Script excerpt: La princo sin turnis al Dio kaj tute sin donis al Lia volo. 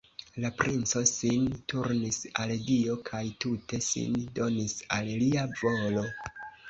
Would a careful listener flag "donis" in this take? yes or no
no